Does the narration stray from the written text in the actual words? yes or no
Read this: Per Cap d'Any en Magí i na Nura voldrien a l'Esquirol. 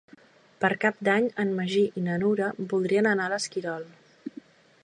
yes